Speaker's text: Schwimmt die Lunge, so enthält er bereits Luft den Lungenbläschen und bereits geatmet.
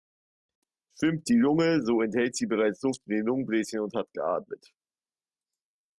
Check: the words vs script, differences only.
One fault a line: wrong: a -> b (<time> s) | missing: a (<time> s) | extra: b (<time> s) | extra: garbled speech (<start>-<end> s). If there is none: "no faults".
wrong: er -> sie (2.4 s)
extra: in (3.0 s)
wrong: bereits -> hat (4.0 s)